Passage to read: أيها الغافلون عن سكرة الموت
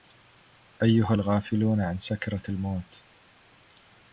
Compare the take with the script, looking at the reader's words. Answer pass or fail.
pass